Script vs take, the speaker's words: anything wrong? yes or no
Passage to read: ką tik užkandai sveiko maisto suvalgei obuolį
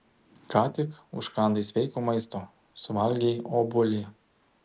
no